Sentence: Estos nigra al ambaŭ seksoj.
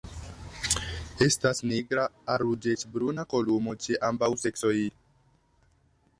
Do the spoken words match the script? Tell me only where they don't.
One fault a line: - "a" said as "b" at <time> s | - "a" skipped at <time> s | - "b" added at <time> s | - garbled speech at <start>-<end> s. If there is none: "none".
- "Estos" said as "Estas" at 1.2 s
- "ruĝecbruna kolumo ĉe" added at 2.4 s